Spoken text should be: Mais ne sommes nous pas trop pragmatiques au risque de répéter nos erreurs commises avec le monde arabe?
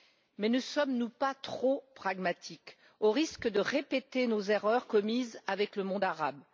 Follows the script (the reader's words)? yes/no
yes